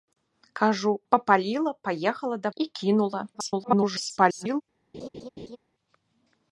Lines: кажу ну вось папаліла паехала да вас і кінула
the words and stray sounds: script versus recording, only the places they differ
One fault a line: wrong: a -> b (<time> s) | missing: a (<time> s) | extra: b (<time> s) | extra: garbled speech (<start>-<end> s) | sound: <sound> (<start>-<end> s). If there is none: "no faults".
missing: ну вось (1.0 s)
missing: вас (2.5 s)
extra: garbled speech (3.3-4.6 s)
sound: laugh (4.9-5.6 s)